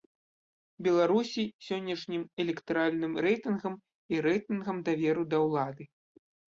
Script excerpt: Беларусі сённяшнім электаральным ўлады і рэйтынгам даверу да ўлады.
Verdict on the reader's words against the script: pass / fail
fail